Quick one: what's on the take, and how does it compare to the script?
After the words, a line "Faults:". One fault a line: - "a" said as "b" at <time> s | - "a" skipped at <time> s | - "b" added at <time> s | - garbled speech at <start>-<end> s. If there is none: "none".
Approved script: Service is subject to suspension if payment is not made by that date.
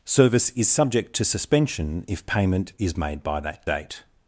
Service is subject to suspension if payment is made by that date.
Faults:
- "not" skipped at 3.0 s